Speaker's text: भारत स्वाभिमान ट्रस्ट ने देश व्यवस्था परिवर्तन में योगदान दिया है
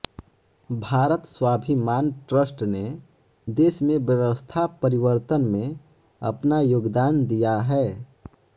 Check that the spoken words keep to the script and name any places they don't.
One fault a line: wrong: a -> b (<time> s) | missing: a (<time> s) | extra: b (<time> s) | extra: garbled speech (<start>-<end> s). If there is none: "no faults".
extra: में (3.8 s)
extra: अपना (6.3 s)